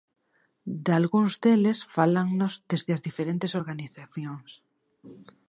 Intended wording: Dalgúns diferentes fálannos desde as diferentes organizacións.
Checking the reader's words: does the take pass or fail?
fail